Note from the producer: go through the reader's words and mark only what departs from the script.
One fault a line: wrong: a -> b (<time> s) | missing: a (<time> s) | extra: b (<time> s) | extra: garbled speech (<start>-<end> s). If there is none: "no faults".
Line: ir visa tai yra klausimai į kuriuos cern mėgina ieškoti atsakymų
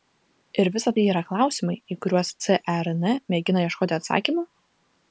no faults